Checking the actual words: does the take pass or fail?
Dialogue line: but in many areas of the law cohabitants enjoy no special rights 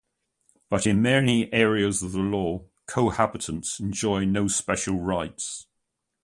pass